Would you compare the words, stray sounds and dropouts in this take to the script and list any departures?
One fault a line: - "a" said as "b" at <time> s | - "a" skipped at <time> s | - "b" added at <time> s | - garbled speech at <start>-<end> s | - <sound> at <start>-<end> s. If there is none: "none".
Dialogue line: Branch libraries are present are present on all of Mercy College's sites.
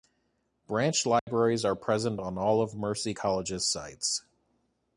- dropout at 1.2-1.3 s
- "are present" skipped at 2.2 s